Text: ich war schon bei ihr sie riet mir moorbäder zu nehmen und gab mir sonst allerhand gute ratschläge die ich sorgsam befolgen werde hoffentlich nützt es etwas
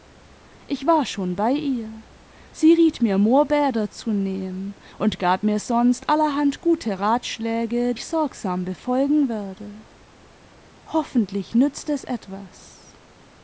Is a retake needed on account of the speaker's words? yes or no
yes